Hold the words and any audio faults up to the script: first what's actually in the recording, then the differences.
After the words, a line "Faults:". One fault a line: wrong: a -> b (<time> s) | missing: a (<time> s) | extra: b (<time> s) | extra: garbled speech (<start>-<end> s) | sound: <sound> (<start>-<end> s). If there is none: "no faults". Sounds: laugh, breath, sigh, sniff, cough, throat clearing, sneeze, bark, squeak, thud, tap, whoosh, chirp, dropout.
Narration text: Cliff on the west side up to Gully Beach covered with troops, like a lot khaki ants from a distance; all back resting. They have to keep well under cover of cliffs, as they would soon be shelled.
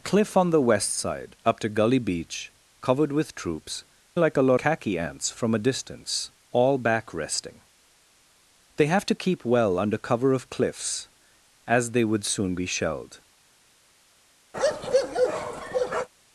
Cliff on the west side up to Gully Beach covered with troops, like a lot khaki ants from a distance; all back resting. They have to keep well under cover of cliffs, as they would soon be shelled.
Faults:
sound: bark (14.5-16.1 s)